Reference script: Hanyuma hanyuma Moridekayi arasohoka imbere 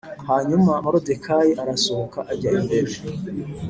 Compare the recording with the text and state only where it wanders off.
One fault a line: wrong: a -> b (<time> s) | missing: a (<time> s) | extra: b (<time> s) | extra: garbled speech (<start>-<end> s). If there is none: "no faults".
missing: hanyuma (0.7 s)
extra: ajya (2.3 s)